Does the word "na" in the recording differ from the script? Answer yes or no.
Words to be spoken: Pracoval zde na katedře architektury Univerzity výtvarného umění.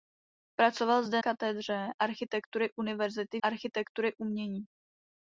yes